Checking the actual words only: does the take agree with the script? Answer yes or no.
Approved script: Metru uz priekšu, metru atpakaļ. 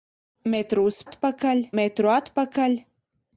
no